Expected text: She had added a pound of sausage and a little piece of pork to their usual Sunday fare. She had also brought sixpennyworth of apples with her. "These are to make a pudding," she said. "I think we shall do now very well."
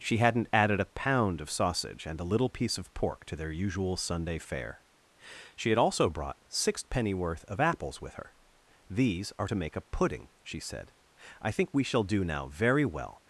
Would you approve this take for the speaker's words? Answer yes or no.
no